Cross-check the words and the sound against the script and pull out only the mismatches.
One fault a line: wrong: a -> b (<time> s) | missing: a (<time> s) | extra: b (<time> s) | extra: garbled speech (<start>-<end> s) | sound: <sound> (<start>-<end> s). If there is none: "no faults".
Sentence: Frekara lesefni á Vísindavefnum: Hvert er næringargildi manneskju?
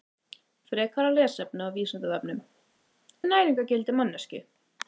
missing: Hvert (2.4 s)